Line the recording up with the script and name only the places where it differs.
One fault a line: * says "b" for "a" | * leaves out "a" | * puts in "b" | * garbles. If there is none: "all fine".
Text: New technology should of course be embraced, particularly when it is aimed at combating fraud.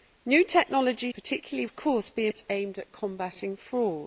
* says "particularly" for "should"
* leaves out "embraced particularly when"